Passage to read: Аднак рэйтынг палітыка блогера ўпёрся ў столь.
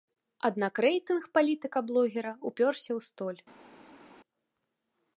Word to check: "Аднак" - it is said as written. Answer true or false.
true